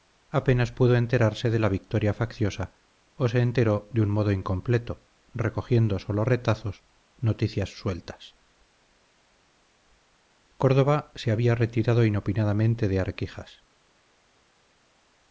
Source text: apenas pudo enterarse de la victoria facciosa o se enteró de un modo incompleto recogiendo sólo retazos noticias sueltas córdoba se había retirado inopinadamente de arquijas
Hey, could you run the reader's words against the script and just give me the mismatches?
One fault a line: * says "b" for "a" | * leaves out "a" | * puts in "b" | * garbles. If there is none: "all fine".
all fine